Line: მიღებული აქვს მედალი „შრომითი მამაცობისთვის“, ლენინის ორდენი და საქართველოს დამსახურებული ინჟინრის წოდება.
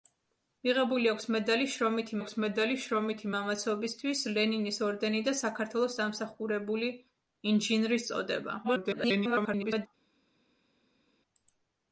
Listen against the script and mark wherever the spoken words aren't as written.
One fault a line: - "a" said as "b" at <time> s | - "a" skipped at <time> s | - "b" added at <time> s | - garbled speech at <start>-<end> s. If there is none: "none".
- "აქვს მედალი შრომითი" added at 2.2 s
- garbled speech at 8.6-9.9 s